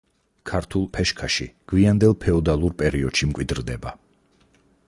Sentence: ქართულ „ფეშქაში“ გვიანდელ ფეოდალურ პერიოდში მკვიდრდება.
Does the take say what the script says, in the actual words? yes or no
yes